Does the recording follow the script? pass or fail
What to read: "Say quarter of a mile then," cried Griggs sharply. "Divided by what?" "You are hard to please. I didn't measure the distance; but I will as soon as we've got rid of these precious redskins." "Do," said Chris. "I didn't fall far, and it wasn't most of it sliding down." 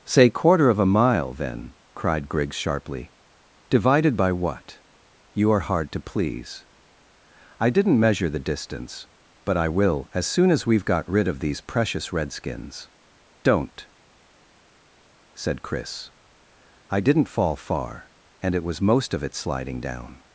fail